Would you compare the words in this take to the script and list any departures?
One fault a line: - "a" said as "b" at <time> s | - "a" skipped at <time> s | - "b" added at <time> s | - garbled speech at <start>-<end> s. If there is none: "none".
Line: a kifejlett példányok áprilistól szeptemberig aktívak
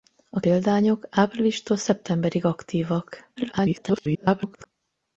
- "kifejlett" skipped at 0.4 s
- garbled speech at 3.4-4.7 s